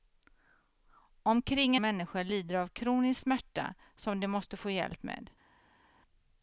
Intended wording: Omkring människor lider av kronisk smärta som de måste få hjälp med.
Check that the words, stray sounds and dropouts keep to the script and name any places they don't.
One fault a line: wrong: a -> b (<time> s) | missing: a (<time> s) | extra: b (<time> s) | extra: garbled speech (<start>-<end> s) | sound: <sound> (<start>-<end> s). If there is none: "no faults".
no faults